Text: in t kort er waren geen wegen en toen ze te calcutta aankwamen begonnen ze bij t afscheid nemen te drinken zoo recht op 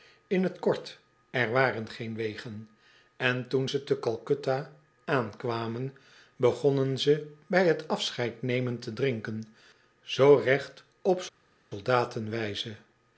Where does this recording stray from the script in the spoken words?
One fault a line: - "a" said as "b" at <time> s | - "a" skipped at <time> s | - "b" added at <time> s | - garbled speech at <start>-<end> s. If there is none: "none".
none